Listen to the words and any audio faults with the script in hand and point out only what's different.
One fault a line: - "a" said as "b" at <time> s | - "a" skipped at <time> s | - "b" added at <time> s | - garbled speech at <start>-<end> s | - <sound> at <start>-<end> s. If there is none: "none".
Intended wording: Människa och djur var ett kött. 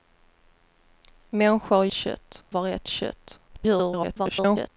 - "djur" said as "kött" at 1.9 s
- garbled speech at 3.5-4.7 s